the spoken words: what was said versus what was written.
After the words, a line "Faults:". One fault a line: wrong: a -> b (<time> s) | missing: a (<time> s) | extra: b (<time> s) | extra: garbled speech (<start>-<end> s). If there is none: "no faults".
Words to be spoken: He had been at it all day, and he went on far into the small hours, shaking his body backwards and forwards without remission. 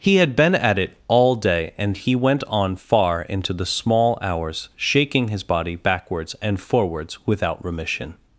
He had been at it all day, and he went on far into the small hours, shaking his body backwards and forwards without remission.
Faults:
no faults